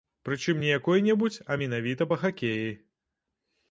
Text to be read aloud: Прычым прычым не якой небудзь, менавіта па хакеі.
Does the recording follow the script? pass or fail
fail